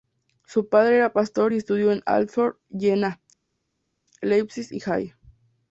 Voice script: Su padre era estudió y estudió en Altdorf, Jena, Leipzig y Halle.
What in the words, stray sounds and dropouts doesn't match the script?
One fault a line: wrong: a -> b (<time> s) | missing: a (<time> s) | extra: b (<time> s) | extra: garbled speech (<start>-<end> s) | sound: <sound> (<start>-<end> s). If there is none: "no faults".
wrong: estudió -> pastor (1.1 s)